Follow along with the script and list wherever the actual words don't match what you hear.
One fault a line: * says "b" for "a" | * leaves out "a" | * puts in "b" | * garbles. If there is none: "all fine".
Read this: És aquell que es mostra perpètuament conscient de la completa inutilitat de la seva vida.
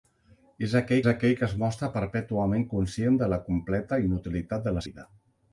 * puts in "aquell"
* leaves out "seva"